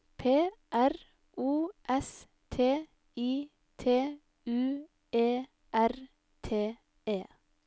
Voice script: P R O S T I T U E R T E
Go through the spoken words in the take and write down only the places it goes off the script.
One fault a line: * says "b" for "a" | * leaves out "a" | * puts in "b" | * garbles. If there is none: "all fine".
all fine